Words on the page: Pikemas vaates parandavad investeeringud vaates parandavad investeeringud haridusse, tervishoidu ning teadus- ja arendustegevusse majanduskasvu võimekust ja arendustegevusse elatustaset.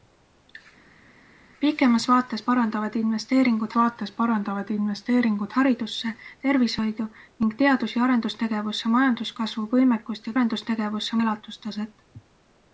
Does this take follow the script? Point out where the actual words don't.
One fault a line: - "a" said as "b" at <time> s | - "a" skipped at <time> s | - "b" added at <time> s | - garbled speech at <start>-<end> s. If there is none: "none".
none